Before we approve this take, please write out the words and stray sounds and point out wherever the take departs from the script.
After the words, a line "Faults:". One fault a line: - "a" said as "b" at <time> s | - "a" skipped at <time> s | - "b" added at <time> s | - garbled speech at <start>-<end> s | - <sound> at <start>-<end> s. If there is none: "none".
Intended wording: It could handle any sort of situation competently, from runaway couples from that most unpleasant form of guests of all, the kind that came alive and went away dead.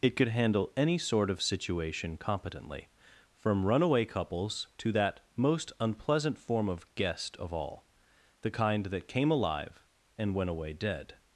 It could handle any sort of situation competently, from runaway couples to that most unpleasant form of guest of all, the kind that came alive and went away dead.
Faults:
- "from" said as "to" at 4.8 s
- "guests" said as "guest" at 7.0 s